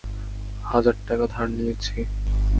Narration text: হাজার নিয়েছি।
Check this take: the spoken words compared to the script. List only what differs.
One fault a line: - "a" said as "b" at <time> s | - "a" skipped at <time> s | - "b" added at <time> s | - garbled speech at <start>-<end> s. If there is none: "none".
- "টাকা ধার" added at 1.1 s